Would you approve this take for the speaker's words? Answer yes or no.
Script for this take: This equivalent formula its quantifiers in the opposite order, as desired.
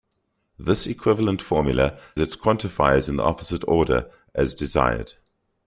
yes